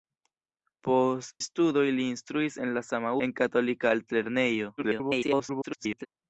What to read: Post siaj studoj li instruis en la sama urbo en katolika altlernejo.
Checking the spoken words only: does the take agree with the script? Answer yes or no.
no